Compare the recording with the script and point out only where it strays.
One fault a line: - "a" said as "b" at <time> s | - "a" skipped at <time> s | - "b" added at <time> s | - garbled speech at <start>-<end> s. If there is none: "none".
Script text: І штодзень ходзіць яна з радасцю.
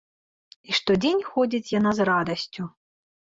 none